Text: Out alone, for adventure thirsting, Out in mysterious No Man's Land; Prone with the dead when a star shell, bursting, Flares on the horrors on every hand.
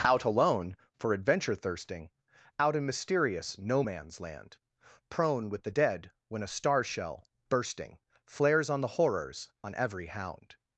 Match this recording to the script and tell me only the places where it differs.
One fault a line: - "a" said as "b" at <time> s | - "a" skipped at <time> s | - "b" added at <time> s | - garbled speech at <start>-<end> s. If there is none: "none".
- "hand" said as "hound" at 10.1 s